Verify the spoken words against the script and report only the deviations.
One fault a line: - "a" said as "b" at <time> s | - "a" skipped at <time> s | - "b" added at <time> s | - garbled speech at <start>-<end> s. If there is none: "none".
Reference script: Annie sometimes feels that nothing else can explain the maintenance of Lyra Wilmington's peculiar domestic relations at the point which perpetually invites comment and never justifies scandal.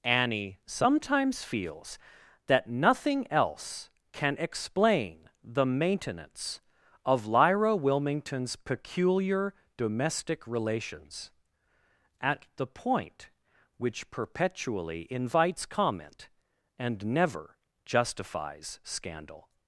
none